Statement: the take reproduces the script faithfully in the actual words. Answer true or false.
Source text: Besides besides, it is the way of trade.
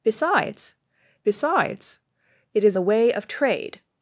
true